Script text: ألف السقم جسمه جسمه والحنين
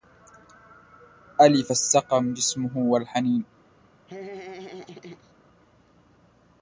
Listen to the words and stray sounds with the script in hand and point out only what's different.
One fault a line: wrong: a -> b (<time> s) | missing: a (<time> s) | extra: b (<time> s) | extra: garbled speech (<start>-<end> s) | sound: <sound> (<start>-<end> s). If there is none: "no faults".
missing: جسمه (2.8 s)
sound: laugh (4.1-5.3 s)